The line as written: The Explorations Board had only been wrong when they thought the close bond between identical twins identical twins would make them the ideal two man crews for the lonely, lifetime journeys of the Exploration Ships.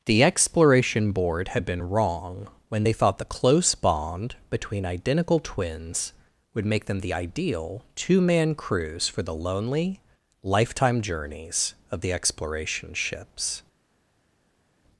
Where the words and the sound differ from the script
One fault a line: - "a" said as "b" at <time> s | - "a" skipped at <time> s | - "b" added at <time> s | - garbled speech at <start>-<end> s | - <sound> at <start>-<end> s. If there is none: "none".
- "Explorations" said as "Exploration" at 0.2 s
- "only" skipped at 1.6 s
- "identical twins" skipped at 6.1 s